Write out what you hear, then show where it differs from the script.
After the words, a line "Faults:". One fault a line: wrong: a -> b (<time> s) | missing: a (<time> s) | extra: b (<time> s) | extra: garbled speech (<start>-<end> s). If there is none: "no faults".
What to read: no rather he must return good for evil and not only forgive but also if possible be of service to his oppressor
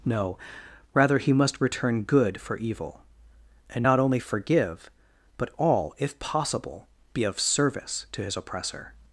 no rather he must return good for evil and not only forgive but all if possible be of service to his oppressor
Faults:
wrong: also -> all (5.6 s)